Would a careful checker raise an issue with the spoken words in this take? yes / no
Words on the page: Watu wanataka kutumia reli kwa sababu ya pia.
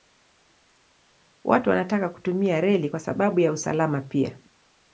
yes